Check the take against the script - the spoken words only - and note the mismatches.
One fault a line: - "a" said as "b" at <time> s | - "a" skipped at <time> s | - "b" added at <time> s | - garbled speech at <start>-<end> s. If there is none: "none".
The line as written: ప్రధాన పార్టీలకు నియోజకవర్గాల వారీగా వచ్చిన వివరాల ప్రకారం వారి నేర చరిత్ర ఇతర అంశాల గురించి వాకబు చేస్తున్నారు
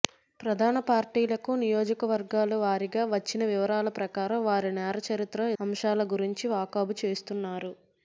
- "ఇతర" skipped at 5.5 s